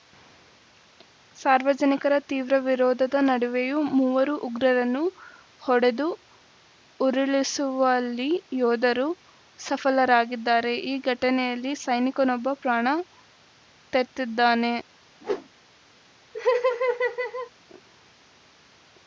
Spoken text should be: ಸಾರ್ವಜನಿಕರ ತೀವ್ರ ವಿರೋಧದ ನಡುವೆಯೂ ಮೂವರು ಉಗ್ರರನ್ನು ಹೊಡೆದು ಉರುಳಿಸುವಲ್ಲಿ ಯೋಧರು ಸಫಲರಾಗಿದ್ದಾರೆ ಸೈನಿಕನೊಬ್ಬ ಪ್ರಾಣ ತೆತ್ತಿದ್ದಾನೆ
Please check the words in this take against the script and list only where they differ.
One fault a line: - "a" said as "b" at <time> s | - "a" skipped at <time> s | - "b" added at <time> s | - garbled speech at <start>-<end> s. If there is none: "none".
- "ಈ ಘಟನೆಯಲ್ಲಿ" added at 10.9 s